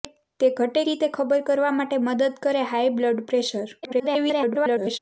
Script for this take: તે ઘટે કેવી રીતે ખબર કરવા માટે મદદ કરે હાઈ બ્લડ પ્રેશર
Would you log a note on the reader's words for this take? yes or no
yes